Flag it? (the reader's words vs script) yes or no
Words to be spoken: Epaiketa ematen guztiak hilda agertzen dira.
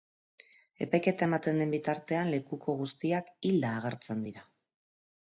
yes